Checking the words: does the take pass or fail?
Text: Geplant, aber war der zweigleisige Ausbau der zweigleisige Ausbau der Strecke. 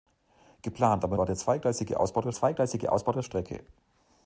pass